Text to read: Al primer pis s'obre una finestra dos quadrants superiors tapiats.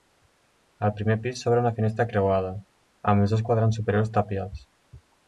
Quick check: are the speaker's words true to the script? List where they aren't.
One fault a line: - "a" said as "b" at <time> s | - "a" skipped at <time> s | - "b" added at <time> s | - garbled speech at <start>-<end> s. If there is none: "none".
- "creuada amb els" added at 2.1 s